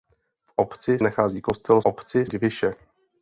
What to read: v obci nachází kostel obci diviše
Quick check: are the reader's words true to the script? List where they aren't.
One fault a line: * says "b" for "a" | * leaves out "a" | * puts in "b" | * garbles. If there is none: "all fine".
all fine